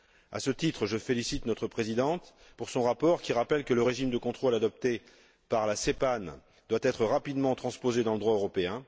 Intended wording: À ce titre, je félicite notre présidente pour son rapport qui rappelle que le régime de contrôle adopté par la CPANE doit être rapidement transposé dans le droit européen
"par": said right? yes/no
yes